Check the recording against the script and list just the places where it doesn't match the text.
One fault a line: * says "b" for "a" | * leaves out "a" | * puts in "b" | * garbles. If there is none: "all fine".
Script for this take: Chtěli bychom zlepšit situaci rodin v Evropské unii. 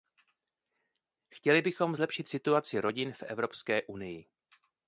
all fine